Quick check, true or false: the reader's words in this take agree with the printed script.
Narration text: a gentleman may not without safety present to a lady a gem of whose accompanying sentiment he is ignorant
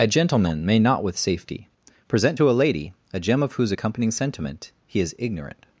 false